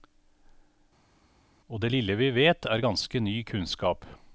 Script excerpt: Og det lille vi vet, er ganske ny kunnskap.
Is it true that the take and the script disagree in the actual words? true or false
false